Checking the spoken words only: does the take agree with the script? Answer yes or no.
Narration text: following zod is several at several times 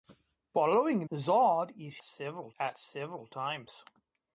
yes